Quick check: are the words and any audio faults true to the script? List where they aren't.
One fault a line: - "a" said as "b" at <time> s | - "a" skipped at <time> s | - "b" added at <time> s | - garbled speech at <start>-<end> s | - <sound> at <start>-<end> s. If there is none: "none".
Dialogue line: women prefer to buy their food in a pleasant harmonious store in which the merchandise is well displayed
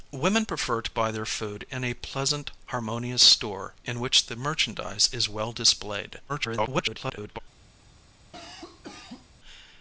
- garbled speech at 6.3-7.4 s
- cough at 8.3-9.3 s